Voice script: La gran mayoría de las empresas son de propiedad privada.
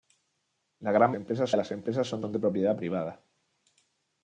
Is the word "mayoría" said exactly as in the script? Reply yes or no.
no